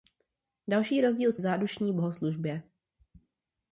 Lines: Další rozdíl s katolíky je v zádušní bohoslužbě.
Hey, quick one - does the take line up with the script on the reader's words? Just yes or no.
no